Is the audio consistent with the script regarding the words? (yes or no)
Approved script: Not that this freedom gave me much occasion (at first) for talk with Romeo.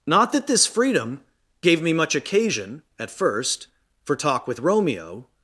yes